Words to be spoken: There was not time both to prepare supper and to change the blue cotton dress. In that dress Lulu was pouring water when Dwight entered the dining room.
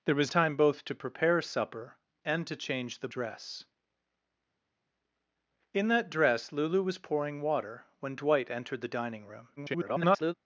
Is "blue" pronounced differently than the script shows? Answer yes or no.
yes